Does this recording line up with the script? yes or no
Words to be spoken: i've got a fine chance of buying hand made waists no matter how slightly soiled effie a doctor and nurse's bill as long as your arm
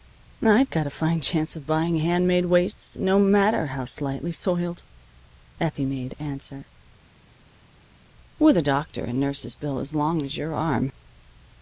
no